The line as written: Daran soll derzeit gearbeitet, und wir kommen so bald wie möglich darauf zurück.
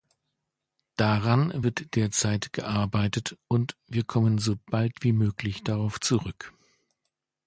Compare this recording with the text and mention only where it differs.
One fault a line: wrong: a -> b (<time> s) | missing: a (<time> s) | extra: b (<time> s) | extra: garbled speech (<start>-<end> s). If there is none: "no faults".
wrong: soll -> wird (1.6 s)